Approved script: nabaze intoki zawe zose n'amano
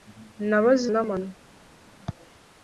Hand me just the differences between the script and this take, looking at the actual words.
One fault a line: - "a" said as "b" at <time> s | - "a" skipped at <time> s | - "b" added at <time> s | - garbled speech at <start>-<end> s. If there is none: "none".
- "intoki zawe zose" skipped at 0.8 s